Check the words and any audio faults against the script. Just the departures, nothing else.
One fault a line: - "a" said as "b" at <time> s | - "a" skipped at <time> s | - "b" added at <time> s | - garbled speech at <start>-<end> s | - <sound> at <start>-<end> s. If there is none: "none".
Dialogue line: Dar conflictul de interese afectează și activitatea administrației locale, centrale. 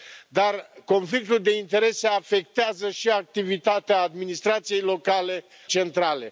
none